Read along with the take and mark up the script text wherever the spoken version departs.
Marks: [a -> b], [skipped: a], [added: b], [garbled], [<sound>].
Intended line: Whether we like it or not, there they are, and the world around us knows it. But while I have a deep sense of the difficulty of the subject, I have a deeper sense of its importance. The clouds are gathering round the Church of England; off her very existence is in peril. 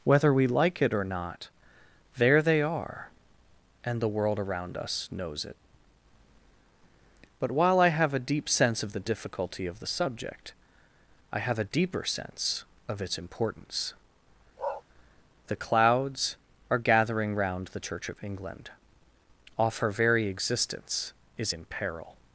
Whether we like it or not, there they are, and the world around us knows it. But while I have a deep sense of the difficulty of the subject, I have a deeper sense of its importance. [bark] The clouds are gathering round the Church of England; off her very existence is in peril.